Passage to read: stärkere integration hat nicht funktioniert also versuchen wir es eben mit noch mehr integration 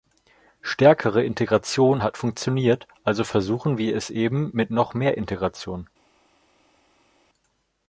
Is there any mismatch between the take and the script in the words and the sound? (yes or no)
yes